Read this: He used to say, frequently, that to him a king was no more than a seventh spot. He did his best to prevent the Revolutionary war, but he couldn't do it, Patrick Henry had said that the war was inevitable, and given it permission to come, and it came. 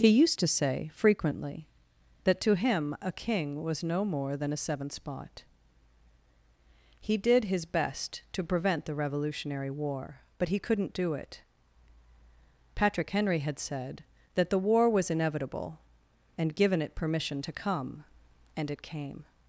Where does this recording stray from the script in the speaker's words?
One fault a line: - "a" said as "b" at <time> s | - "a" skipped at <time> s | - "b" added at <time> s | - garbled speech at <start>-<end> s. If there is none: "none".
none